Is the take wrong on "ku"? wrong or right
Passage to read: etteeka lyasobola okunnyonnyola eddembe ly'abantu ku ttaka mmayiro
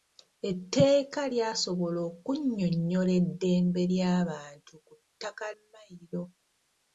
right